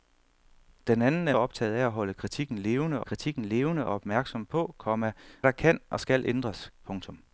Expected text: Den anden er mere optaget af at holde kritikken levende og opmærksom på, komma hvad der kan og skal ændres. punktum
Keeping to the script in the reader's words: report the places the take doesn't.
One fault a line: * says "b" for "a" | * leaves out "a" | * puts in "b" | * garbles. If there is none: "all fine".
* leaves out "mere"
* puts in "kritikken levende"
* leaves out "hvad"